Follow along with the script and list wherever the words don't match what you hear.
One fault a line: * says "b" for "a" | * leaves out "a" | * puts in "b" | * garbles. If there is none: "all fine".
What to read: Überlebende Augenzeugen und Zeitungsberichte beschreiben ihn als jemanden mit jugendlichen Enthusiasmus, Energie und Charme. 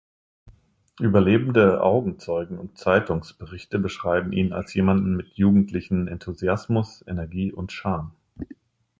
all fine